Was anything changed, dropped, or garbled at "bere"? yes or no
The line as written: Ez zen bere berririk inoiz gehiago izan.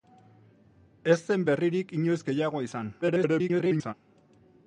yes